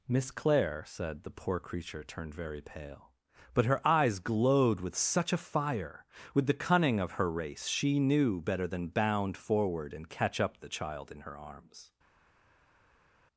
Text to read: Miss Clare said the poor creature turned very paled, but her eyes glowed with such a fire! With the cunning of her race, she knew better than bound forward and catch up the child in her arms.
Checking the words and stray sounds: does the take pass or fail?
fail